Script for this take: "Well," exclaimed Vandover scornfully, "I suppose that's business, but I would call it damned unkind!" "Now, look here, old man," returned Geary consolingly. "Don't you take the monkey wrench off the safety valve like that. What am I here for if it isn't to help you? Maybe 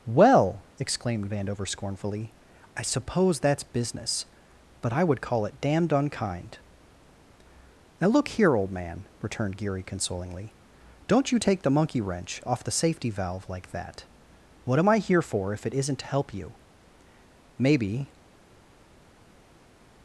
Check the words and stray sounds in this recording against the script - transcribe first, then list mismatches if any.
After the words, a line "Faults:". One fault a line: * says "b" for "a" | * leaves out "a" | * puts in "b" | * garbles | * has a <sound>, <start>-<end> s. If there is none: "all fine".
"Well," exclaimed Vandover scornfully, "I suppose that's business, but I would call it damned unkind!" "Now, look here, old man," returned Geary consolingly. "Don't you take the monkey wrench off the safety valve like that. What am I here for if it isn't to help you? Maybe
Faults:
all fine